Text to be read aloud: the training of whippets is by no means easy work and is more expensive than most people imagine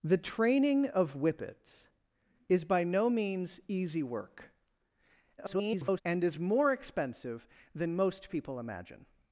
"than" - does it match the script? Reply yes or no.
yes